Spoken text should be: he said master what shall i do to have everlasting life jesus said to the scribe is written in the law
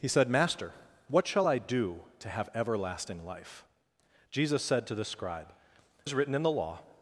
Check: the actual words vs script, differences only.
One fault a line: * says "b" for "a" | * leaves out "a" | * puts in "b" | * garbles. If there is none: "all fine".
all fine